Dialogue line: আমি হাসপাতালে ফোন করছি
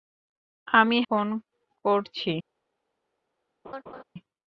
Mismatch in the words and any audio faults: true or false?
true